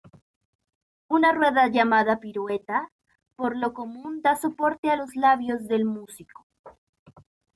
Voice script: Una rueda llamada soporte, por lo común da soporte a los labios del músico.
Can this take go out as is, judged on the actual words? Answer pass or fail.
fail